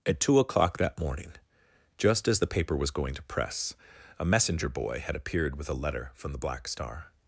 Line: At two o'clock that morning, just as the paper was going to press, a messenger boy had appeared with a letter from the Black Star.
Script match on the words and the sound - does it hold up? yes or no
yes